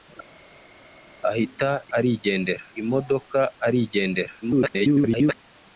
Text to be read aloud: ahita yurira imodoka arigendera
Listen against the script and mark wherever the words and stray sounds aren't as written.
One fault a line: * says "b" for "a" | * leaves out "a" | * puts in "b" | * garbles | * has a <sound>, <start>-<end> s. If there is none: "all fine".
* says "arigendera" for "yurira"
* garbles